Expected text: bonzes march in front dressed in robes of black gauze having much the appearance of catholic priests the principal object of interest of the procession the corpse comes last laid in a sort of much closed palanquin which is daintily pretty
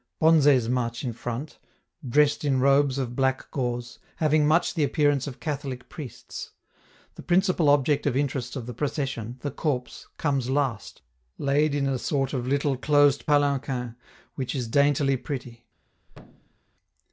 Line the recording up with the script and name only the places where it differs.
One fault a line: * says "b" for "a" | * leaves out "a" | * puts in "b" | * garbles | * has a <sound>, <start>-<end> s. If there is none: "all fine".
* says "little" for "much"
* has a thud, 16.1-16.6 s